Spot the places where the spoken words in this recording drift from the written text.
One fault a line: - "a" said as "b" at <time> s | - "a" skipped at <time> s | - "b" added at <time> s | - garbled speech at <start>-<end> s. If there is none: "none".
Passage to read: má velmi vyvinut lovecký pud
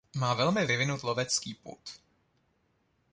none